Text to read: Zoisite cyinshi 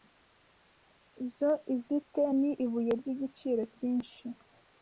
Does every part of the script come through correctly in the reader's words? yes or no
no